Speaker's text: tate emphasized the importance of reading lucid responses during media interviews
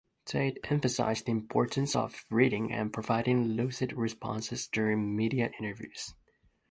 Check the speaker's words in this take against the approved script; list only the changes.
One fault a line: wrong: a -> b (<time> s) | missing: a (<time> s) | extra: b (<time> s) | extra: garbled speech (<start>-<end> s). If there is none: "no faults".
extra: and providing (2.7 s)